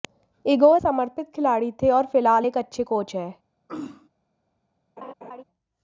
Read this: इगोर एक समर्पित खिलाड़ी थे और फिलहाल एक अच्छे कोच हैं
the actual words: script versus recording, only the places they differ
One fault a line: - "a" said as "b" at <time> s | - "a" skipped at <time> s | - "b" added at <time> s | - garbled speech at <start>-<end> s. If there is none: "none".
- "एक" skipped at 0.8 s